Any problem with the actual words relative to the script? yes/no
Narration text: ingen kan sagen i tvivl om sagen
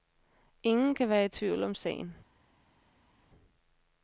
yes